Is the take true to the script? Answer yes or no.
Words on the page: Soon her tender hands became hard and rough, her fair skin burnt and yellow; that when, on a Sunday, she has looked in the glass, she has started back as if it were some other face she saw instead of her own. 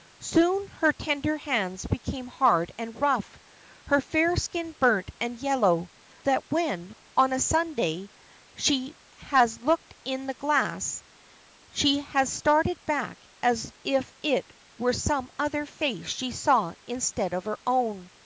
yes